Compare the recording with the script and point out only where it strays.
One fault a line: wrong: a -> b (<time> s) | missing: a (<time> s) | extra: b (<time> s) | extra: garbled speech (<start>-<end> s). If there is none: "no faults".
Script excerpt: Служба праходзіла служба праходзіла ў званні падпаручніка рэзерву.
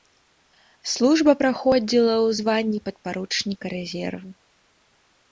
missing: служба праходзіла (2.1 s)